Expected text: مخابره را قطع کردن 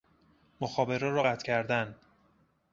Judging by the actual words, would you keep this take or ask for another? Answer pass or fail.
pass